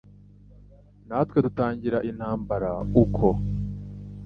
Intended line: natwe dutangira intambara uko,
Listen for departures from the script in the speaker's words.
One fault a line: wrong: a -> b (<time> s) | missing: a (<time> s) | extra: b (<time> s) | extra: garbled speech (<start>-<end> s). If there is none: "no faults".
no faults